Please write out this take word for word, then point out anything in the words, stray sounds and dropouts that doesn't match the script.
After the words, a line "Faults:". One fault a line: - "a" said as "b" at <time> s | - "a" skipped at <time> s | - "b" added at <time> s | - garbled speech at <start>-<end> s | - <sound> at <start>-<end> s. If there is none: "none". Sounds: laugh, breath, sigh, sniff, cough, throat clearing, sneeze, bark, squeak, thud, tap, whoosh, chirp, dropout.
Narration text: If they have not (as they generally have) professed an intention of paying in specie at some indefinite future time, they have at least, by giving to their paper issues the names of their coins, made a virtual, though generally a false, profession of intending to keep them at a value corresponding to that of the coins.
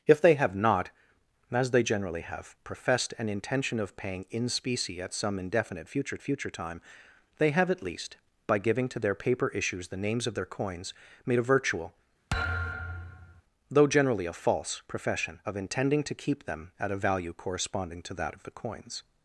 If they have not (as they generally have) professed an intention of paying in specie at some indefinite future future time, they have at least, by giving to their paper issues the names of their coins, made a virtual, though generally a false, profession of intending to keep them at a value corresponding to that of the coins.
Faults:
- "future" added at 6.2 s
- thud at 12.3-13.4 s